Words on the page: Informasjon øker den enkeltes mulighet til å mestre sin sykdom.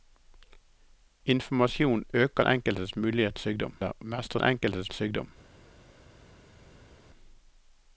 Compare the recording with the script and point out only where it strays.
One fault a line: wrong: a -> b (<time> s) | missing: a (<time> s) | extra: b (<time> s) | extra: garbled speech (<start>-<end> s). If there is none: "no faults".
missing: den (2.4 s)
wrong: til -> sykdom (3.4 s)
wrong: sin -> enkeltes (4.4 s)